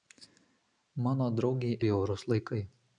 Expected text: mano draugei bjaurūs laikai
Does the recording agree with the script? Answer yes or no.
yes